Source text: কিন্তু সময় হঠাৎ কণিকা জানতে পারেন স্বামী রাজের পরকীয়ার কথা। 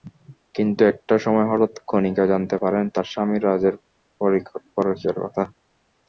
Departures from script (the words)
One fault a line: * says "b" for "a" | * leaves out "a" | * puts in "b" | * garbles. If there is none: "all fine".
* puts in "একটা"
* puts in "তাঁর"